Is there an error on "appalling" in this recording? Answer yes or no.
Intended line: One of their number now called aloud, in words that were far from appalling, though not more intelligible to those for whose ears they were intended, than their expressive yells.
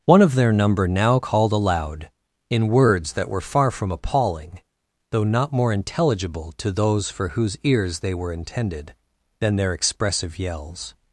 no